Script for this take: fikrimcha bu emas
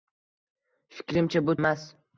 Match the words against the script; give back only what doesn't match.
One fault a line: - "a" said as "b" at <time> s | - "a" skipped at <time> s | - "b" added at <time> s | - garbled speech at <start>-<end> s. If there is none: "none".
none